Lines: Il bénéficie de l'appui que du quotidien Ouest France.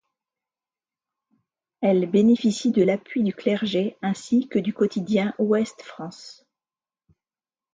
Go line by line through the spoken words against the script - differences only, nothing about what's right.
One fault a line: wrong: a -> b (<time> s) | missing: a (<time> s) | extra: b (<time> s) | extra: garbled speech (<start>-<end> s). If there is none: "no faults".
wrong: Il -> Elle (1.8 s)
extra: du clergé ainsi (3.2 s)